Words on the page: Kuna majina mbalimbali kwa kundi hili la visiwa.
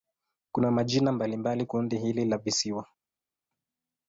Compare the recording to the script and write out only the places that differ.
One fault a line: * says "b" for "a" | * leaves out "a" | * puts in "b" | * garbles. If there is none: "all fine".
* leaves out "kwa"